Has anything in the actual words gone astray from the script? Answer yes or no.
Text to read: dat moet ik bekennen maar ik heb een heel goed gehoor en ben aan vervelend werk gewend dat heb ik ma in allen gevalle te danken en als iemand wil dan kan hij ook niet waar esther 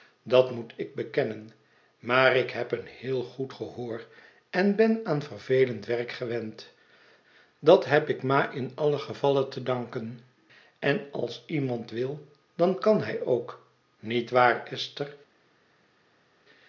no